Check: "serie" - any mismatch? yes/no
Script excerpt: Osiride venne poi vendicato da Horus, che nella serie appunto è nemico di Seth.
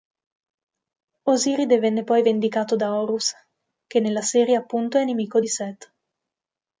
no